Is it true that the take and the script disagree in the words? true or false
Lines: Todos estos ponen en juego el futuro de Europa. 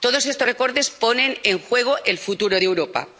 true